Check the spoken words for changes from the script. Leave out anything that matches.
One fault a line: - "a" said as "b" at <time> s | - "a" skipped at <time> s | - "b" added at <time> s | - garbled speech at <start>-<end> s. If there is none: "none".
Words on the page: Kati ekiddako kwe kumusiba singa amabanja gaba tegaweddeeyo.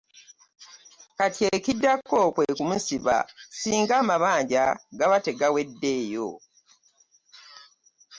none